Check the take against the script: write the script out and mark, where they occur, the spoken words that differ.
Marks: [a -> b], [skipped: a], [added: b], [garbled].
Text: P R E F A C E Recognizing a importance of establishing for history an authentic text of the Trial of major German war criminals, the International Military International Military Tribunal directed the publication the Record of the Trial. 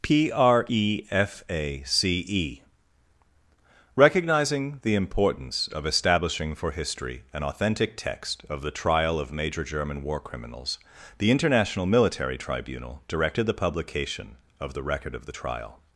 P R E F A C E Recognizing [a -> the] importance of establishing for history an authentic text of the Trial of major German war criminals, the International Military [skipped: International Military] Tribunal directed the publication [added: of] the Record of the Trial.